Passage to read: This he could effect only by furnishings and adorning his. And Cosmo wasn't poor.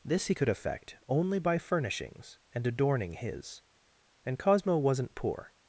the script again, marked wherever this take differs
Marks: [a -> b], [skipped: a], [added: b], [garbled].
This he could effect only by furnishings and adorning his. And Cosmo wasn't poor.